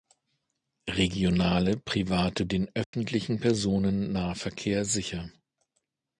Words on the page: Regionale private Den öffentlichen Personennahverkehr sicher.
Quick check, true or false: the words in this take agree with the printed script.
true